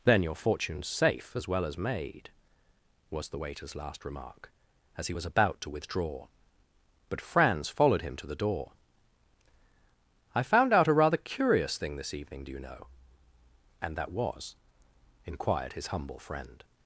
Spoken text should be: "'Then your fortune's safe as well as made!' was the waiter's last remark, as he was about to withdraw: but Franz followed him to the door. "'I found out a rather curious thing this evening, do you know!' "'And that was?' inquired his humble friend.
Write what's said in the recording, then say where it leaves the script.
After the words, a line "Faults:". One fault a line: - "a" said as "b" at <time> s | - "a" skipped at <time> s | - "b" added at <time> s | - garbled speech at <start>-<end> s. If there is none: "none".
"'Then your fortune's safe as well as made!' was the waiter's last remark, as he was about to withdraw: but Franz followed him to the door. "'I found out a rather curious thing this evening, do you know!' "'And that was?' inquired his humble friend.
Faults:
none